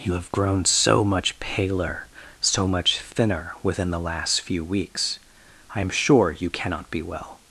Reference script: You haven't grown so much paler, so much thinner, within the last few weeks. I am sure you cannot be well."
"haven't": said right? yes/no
no